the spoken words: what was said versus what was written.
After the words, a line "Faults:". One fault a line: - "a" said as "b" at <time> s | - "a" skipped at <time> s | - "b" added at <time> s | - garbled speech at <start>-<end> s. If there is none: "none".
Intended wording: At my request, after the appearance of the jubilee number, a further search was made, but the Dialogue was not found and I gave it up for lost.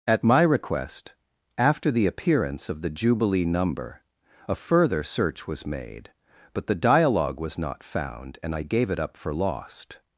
At my request, after the appearance of the jubilee number, a further search was made, but the Dialogue was not found and I gave it up for lost.
Faults:
none